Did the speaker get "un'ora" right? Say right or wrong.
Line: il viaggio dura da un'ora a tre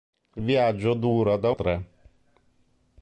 wrong